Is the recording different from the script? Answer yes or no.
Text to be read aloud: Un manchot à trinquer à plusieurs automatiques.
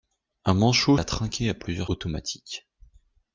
no